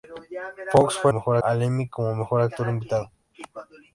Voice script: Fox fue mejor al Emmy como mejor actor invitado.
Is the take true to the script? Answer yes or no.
yes